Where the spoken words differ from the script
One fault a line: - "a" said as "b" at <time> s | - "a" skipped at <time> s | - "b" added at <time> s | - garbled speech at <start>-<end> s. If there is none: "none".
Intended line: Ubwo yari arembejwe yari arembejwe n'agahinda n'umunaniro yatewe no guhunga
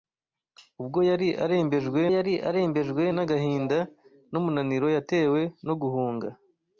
none